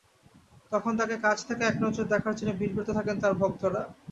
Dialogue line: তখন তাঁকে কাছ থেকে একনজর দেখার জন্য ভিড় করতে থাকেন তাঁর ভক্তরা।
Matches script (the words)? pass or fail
pass